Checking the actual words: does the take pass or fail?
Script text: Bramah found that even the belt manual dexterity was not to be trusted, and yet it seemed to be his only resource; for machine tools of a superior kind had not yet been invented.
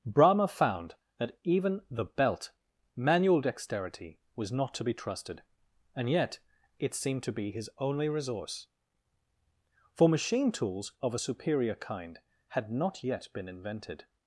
pass